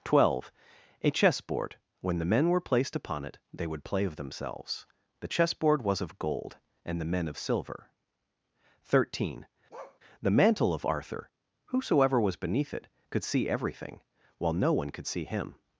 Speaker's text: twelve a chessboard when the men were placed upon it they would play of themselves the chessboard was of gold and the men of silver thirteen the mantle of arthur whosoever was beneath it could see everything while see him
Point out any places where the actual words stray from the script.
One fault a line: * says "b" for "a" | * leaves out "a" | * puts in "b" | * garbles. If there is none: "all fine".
* puts in "no one could"